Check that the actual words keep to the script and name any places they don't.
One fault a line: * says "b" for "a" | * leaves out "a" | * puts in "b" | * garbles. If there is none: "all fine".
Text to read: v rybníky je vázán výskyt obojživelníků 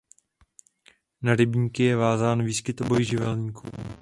* says "na" for "v"